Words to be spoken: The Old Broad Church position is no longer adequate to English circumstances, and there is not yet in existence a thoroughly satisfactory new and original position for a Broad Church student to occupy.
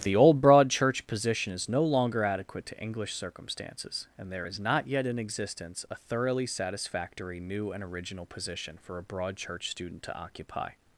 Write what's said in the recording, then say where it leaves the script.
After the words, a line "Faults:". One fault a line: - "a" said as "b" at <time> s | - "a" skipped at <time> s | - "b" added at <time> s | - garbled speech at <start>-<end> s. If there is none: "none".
The Old Broad Church position is no longer adequate to English circumstances, and there is not yet in existence a thoroughly satisfactory new and original position for a Broad Church student to occupy.
Faults:
none